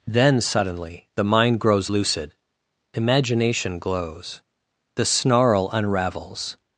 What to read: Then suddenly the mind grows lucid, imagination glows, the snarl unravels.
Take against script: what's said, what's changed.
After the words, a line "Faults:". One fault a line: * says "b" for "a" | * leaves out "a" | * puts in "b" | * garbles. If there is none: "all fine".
Then suddenly the mind grows lucid, imagination glows, the snarl unravels.
Faults:
all fine